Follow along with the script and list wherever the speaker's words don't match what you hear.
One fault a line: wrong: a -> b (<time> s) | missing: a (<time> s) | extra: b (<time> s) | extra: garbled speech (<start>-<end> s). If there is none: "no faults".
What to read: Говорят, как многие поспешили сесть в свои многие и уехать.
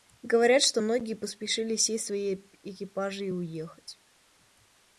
wrong: как -> что (0.6 s)
wrong: многие -> экипажи (2.6 s)